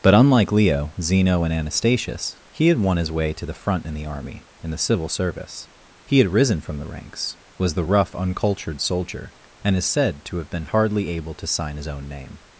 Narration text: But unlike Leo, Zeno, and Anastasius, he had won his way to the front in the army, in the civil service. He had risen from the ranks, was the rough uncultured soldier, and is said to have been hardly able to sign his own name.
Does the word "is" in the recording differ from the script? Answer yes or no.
no